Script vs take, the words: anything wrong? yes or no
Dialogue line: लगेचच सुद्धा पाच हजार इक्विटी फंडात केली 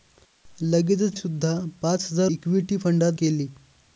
no